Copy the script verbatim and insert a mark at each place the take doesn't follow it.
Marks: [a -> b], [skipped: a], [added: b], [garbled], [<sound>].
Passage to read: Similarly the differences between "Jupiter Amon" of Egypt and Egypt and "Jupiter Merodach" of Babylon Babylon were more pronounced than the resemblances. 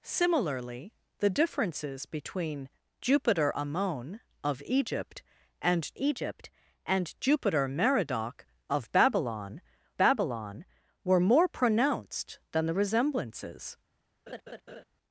Similarly the differences between "Jupiter Amon" of Egypt and Egypt and "Jupiter Merodach" of Babylon Babylon were more pronounced than the resemblances. [laugh]